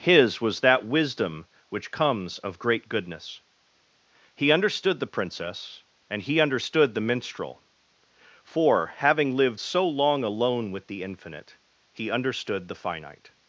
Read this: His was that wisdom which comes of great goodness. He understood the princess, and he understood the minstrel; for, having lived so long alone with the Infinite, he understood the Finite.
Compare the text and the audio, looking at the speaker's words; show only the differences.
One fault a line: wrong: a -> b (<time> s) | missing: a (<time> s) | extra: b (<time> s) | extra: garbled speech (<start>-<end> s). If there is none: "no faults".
no faults